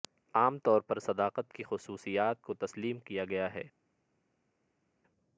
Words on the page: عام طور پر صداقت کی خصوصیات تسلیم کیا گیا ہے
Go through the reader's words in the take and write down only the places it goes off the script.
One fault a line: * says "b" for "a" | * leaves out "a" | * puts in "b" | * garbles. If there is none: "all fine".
* puts in "کو"